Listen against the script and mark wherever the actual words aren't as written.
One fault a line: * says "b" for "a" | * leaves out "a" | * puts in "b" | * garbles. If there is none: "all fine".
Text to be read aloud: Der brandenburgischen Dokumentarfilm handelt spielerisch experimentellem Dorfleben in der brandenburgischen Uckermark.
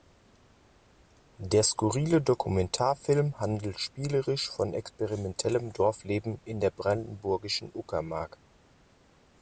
* says "skurrile" for "brandenburgischen"
* puts in "von"